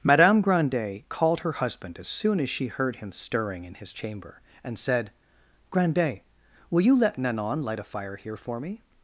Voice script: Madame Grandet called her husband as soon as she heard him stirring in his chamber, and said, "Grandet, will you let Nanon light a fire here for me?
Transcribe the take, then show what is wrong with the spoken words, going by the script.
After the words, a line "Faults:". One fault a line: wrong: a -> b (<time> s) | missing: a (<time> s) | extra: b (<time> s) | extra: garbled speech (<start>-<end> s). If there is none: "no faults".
Madame Grandet called her husband as soon as she heard him stirring in his chamber, and said, "Grandet, will you let Nanon light a fire here for me?
Faults:
no faults